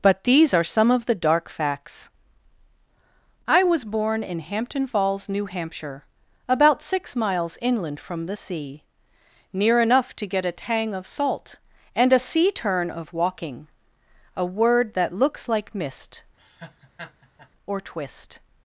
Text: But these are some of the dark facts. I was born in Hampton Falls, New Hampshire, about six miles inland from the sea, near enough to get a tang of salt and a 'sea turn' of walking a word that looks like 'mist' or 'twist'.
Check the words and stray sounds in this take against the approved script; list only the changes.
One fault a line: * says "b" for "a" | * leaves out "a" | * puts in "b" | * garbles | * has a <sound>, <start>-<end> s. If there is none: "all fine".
* has a laugh, 16.4-17.5 s